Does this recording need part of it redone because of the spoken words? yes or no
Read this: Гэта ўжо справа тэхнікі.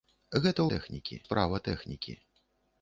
yes